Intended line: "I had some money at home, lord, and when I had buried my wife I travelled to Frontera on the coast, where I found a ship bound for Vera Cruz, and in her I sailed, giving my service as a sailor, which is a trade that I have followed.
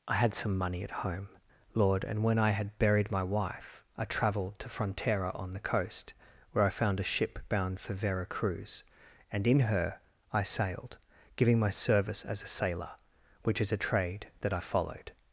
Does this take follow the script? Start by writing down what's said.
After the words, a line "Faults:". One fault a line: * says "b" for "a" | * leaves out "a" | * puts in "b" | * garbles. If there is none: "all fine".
"I had some money at home, lord, and when I had buried my wife I travelled to Frontera on the coast, where I found a ship bound for Vera Cruz, and in her I sailed, giving my service as a sailor, which is a trade that I followed.
Faults:
* leaves out "have"